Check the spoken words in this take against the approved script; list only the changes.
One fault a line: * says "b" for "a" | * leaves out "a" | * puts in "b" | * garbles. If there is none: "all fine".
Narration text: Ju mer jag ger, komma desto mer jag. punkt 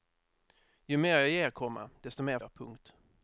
all fine